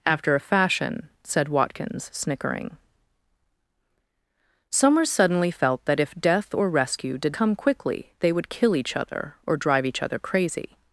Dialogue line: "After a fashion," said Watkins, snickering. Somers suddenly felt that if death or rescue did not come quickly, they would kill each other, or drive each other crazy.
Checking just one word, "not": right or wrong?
wrong